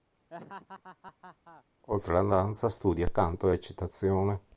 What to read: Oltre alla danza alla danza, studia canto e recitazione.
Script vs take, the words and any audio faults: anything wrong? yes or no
yes